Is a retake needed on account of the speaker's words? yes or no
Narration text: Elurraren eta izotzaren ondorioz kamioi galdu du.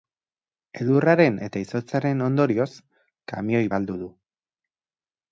no